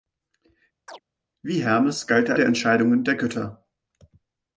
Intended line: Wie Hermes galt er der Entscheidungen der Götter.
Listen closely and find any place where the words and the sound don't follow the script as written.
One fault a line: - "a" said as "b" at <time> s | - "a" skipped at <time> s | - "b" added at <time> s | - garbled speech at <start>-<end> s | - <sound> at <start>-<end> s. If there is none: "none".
- chirp at 0.9-1.0 s